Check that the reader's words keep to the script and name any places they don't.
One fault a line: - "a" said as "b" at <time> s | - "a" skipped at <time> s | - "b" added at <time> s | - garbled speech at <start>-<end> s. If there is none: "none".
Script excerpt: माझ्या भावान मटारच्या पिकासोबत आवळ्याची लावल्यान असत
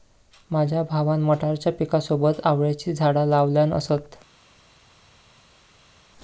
- "झाडा" added at 2.9 s